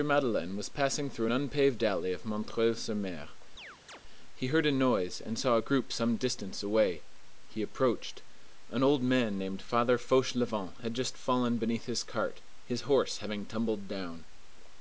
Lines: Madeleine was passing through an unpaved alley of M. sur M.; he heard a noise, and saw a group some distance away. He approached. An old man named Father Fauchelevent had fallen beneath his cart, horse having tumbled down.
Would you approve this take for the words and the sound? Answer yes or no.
no